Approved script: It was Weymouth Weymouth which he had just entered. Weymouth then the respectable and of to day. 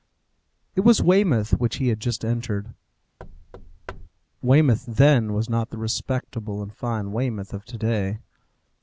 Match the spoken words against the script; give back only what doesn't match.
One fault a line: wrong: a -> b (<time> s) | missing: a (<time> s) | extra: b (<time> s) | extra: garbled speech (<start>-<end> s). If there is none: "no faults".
missing: Weymouth (1.5 s)
extra: was not (5.3 s)
extra: fine Weymouth (6.7 s)